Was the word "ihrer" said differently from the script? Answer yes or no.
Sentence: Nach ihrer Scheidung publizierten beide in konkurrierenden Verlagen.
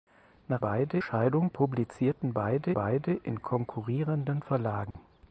yes